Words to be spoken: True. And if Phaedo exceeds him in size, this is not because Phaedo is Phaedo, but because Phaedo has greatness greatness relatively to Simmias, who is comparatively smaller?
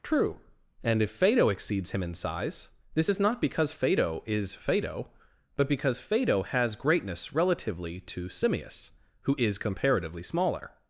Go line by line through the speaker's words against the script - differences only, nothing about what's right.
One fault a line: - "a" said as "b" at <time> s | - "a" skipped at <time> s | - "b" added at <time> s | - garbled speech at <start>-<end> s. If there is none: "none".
- "greatness" skipped at 7.3 s